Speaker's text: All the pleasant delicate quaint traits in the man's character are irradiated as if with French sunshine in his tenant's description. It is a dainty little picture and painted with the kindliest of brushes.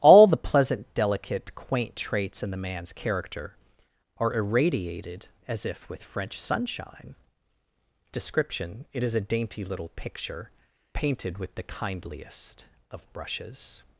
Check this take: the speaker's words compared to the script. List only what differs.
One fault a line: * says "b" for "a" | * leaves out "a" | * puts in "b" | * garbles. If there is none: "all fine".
* leaves out "in his tenant's"
* leaves out "and"